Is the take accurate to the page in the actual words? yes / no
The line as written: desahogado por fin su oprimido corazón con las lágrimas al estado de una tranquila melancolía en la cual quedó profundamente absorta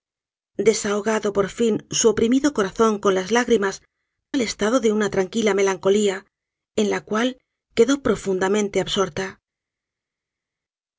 yes